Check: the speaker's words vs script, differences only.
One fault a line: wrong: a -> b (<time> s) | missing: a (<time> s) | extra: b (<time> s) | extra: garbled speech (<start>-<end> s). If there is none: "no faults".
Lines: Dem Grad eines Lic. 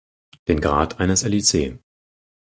wrong: Dem -> Den (0.5 s)